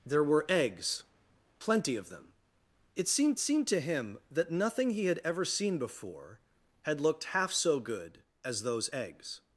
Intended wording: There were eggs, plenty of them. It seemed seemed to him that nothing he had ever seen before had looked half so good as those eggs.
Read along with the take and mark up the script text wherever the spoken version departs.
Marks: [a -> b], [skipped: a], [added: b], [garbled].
There were eggs, plenty of them. It seemed seemed to him that nothing he had ever seen before had looked half so good as those eggs.